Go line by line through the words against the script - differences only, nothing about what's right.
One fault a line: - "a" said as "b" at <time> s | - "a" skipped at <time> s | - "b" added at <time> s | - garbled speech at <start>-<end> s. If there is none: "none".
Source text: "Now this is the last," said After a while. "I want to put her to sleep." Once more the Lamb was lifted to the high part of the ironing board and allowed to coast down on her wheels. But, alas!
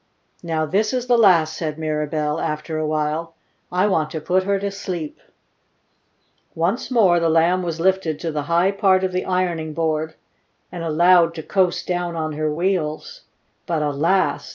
- "Mirabell" added at 1.8 s